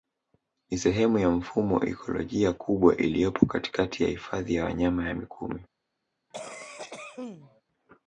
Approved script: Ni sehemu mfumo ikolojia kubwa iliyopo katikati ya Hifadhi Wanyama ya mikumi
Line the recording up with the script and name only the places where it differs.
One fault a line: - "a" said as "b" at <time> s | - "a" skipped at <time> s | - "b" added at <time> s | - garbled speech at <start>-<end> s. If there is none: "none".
- "ya" added at 1.2 s
- "ya" added at 4.5 s